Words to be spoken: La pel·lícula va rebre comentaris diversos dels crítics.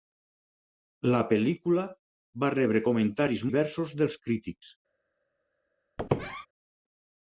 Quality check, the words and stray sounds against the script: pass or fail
fail